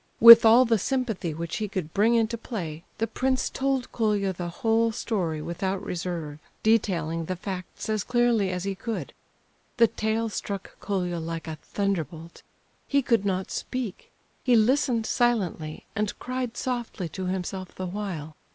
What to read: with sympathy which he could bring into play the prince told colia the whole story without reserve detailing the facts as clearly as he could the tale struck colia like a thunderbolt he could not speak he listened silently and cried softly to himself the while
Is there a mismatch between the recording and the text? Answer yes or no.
yes